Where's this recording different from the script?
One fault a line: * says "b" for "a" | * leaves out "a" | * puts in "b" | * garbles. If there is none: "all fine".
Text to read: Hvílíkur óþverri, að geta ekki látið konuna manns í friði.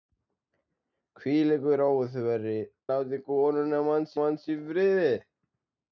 * leaves out "að geta ekki"
* puts in "manns"